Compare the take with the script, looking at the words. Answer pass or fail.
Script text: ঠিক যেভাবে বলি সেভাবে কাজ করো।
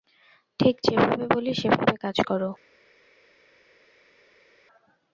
pass